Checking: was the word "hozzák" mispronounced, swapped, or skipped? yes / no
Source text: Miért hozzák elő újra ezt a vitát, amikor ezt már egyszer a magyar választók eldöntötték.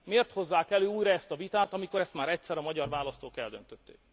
no